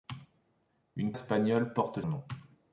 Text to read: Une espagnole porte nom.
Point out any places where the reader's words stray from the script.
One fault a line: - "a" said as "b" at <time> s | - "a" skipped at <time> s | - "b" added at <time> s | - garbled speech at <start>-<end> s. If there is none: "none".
none